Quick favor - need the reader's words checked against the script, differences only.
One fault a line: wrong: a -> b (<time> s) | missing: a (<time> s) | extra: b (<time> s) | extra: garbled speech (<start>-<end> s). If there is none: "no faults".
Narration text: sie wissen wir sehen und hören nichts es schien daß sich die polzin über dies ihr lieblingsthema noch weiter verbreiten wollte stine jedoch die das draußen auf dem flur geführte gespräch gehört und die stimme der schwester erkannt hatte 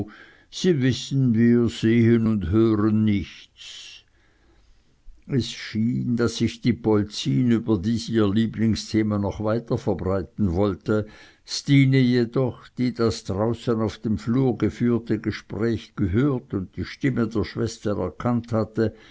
no faults